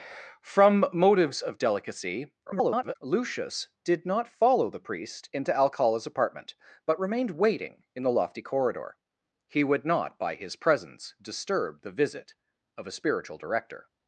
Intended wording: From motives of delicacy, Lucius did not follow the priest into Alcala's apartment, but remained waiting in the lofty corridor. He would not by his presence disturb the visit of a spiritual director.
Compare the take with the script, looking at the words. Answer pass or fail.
fail